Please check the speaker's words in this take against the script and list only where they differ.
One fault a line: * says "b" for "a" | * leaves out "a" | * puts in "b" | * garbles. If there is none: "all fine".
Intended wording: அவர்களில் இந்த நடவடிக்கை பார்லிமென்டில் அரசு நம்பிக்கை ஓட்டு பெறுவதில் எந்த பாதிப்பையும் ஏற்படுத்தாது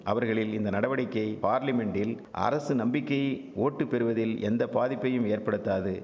all fine